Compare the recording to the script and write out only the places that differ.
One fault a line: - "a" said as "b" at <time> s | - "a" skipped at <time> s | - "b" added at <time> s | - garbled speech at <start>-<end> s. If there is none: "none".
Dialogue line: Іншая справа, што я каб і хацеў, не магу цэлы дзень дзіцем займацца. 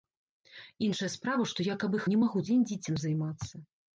- "хацеў" skipped at 2.0 s
- "цэлы" skipped at 2.4 s